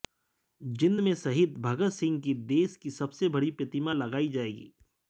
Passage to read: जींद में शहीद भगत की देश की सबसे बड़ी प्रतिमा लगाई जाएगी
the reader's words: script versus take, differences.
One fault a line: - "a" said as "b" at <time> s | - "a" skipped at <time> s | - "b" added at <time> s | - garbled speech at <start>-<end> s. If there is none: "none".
- "सिंह" added at 1.9 s